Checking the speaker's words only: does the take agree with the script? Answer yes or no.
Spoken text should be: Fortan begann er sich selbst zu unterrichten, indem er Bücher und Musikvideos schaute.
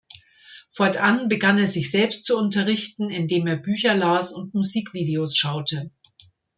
no